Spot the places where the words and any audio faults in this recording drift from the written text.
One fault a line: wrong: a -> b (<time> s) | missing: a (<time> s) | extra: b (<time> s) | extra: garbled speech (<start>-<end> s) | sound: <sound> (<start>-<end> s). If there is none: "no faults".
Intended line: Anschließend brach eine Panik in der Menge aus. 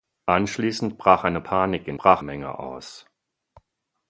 wrong: der -> brach (2.0 s)